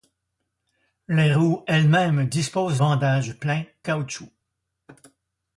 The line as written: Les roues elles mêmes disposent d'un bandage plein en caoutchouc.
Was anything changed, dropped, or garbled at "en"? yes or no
yes